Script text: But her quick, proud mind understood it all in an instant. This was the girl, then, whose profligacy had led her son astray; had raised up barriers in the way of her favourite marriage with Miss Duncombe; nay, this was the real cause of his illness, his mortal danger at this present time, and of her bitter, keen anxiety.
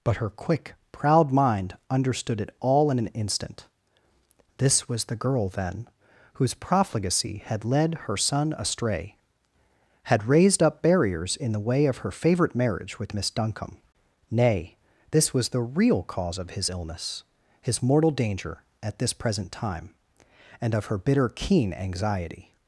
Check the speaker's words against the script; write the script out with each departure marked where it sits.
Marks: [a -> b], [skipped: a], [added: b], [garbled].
But her quick, proud mind understood it all in an instant. This was the girl, then, whose profligacy had led her son astray; had raised up barriers in the way of her favourite marriage with Miss Duncombe; nay, this was the real cause of his illness, his mortal danger at this present time, and of her bitter, keen anxiety.